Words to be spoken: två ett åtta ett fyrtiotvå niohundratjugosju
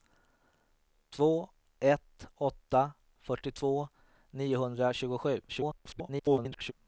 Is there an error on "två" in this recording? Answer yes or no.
no